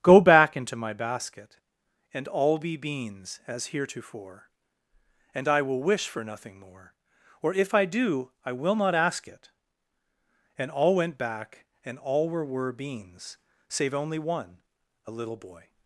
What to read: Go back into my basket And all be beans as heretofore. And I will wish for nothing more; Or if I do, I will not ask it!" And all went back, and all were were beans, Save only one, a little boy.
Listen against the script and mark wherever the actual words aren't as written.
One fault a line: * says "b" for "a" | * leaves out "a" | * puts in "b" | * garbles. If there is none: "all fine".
all fine